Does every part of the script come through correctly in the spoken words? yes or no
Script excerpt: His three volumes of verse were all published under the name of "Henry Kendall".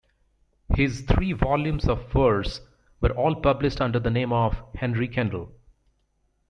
yes